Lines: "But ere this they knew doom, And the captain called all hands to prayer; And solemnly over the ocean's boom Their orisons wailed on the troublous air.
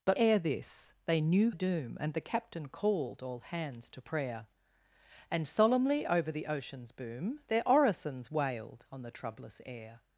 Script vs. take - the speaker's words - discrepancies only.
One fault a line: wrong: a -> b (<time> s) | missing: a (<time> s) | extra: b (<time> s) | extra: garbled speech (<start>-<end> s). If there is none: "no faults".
no faults